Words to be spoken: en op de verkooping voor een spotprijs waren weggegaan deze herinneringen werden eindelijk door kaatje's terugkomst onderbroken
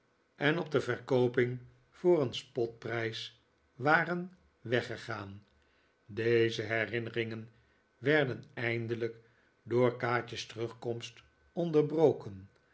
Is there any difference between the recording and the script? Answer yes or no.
no